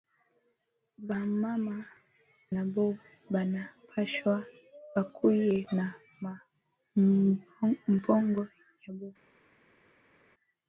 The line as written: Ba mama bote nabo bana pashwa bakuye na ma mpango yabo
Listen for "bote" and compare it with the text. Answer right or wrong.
wrong